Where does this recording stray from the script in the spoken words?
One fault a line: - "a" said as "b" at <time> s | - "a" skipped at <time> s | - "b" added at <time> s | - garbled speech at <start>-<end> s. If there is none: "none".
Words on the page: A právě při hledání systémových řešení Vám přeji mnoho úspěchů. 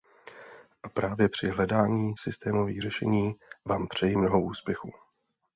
none